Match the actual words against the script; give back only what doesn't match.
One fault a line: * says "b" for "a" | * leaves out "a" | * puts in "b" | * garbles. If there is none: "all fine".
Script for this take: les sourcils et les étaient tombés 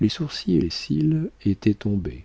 * puts in "cils"